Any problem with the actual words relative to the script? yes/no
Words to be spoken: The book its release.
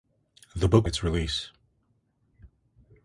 no